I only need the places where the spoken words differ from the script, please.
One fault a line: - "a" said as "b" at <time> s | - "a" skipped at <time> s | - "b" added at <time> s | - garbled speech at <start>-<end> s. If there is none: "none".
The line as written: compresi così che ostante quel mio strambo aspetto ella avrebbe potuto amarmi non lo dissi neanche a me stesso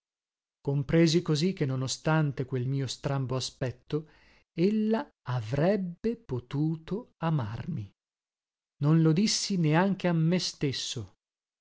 - "non" added at 1.6 s